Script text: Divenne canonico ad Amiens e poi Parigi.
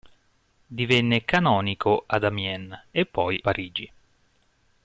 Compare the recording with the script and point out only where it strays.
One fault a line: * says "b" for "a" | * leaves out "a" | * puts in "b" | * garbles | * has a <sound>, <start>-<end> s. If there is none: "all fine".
all fine